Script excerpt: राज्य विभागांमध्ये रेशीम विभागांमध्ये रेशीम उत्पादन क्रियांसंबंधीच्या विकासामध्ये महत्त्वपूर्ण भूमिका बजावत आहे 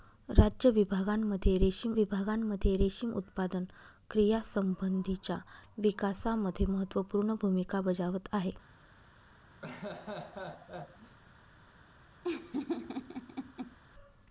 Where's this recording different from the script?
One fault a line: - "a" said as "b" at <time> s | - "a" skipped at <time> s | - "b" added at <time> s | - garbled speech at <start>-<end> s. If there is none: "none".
none